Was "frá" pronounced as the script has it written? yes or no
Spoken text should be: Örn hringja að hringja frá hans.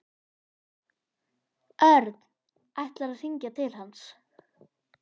no